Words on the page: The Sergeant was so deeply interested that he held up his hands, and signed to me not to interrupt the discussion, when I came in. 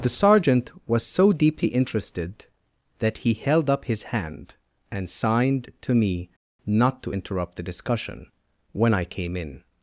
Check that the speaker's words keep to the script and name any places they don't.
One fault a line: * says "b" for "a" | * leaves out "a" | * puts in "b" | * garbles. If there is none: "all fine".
* says "hand" for "hands"